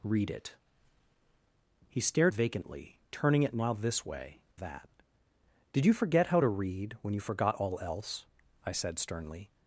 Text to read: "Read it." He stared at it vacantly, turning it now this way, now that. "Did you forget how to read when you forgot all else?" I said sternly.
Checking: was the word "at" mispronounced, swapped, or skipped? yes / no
yes